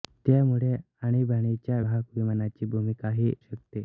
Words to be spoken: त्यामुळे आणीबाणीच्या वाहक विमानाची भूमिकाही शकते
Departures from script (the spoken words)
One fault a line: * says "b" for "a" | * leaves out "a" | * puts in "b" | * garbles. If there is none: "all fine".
all fine